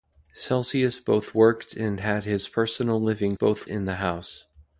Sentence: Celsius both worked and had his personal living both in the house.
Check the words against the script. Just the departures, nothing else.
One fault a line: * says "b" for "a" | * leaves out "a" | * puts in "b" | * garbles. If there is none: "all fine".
all fine